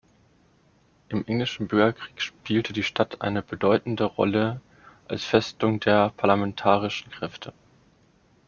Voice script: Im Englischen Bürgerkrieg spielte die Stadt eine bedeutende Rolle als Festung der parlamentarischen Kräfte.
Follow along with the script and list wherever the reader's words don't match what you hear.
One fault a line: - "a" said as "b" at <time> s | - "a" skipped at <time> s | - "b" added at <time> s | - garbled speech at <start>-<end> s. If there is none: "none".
none